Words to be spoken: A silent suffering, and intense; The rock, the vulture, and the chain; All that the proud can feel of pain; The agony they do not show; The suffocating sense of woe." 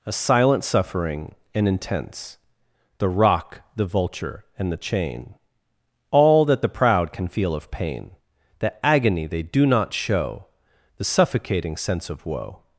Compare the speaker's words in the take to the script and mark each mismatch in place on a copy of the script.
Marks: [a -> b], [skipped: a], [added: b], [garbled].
A silent suffering, and intense; The rock, the vulture, and the chain; All that the proud can feel of pain; The agony they do not show; The suffocating sense of woe."